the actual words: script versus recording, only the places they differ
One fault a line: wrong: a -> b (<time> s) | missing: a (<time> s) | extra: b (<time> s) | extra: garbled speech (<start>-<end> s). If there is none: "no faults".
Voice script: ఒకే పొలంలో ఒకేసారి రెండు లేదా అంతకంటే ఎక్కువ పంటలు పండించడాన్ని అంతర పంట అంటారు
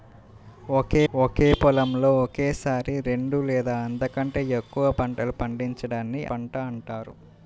extra: ఒకే (1.1 s)
missing: అంతర (6.2 s)